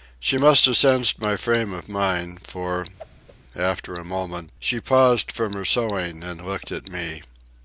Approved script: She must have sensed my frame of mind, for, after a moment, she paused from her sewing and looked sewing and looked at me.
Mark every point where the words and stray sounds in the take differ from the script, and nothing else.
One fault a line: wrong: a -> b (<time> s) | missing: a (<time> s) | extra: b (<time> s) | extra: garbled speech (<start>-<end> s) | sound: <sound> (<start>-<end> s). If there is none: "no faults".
sound: whoosh (3.0-3.4 s)
missing: sewing and looked (6.7 s)